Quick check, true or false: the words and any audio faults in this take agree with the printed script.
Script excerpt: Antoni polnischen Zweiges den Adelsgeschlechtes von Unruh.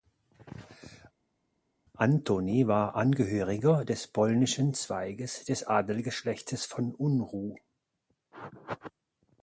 false